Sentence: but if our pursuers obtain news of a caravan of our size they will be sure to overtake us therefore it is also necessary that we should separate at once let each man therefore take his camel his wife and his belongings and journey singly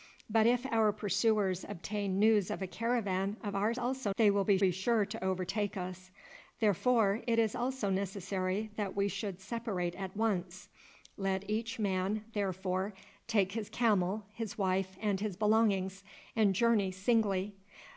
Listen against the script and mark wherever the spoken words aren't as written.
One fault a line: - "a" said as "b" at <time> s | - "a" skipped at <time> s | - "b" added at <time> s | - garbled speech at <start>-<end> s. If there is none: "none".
- "size" said as "also" at 3.8 s
- "be" added at 4.6 s